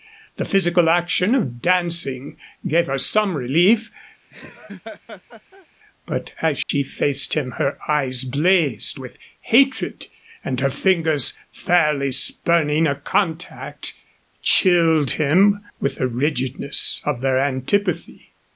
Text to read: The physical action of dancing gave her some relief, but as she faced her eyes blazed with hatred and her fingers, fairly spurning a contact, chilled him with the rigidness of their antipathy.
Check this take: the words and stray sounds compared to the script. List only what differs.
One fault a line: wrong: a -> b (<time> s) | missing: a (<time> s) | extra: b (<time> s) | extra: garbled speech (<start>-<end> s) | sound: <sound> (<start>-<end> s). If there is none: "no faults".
sound: laugh (4.3-5.7 s)
sound: dropout (6.6-6.7 s)
extra: him (7.3 s)